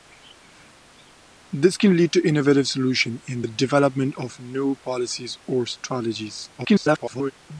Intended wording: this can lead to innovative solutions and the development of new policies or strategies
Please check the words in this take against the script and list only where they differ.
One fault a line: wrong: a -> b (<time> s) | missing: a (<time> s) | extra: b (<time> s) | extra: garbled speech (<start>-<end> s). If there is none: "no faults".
extra: garbled speech (6.6-7.3 s)